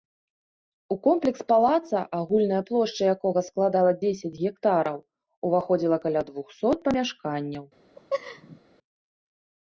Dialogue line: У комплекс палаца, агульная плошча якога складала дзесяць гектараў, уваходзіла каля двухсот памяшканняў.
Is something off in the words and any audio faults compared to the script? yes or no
yes